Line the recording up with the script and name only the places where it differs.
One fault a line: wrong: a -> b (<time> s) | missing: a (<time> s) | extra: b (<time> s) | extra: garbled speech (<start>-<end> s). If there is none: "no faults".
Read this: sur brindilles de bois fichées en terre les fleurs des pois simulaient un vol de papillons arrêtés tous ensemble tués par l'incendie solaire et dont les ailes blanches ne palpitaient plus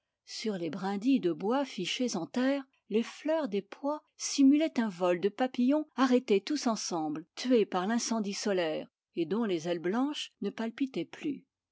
extra: les (0.6 s)